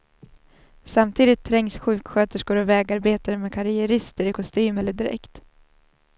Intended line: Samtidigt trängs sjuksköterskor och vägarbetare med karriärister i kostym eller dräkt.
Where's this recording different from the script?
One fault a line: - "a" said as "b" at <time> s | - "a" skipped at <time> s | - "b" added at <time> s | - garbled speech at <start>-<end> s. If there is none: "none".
none